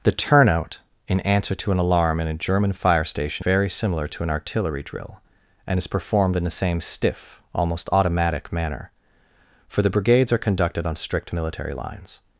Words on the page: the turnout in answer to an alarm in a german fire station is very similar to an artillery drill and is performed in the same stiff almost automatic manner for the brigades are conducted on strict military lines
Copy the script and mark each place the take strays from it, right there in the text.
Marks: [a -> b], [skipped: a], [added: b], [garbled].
the turnout in answer to an alarm in a german fire station [skipped: is] very similar to an artillery drill and is performed in the same stiff almost automatic manner for the brigades are conducted on strict military lines